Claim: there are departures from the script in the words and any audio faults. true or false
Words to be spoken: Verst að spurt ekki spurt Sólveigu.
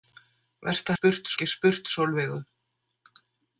false